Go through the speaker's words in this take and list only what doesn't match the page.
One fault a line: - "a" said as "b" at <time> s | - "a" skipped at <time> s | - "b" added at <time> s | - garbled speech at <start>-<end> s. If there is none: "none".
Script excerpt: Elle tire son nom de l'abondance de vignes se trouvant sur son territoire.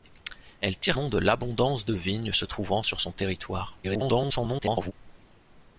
- "son" skipped at 1.0 s
- garbled speech at 3.8-4.9 s